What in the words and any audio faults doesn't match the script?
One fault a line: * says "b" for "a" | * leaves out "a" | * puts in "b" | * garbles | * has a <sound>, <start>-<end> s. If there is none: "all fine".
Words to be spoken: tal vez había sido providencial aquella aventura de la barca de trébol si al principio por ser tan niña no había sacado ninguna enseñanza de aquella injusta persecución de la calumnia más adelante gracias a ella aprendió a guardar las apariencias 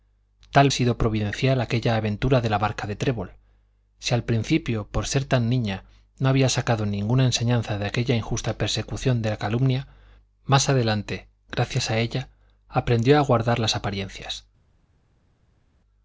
* leaves out "vez había"